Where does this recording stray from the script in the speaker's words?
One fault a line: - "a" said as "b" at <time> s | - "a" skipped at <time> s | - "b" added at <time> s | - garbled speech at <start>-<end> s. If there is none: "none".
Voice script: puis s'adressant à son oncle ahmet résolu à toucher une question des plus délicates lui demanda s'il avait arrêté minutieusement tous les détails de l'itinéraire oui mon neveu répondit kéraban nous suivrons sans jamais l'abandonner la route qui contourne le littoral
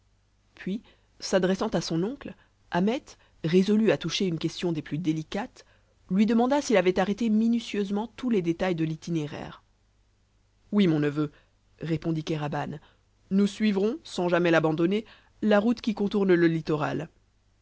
none